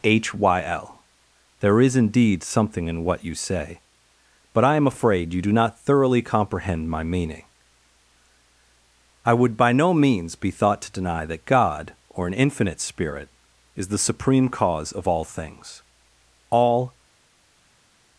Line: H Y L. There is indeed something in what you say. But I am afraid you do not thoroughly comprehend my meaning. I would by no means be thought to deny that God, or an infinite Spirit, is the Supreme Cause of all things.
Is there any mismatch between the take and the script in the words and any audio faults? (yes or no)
yes